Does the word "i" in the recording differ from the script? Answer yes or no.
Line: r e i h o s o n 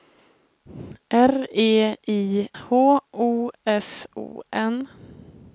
no